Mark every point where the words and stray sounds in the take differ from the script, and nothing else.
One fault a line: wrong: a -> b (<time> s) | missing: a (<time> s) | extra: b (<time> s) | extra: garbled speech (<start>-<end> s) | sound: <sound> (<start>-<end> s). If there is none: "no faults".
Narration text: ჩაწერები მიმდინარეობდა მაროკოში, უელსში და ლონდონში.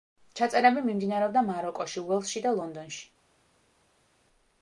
no faults